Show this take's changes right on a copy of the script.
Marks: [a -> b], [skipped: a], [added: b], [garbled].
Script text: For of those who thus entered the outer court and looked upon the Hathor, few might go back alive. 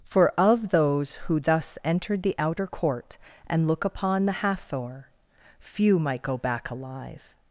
For of those who thus entered the outer court and [looked -> look] upon the Hathor, few might go back alive.